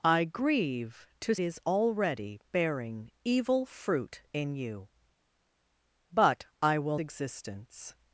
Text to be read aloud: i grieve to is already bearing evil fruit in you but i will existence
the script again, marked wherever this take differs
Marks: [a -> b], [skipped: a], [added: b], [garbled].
i grieve to is already bearing evil fruit in you but i will existence